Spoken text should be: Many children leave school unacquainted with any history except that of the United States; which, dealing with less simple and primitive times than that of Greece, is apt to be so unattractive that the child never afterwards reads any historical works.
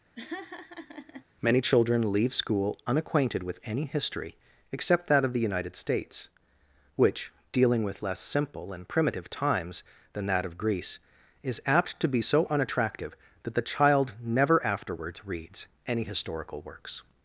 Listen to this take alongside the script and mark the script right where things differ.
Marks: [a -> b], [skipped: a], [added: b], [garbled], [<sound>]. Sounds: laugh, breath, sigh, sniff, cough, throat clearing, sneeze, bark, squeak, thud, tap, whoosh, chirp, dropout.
[laugh] Many children leave school unacquainted with any history except that of the United States; which, dealing with less simple and primitive times than that of Greece, is apt to be so unattractive that the child never afterwards reads any historical works.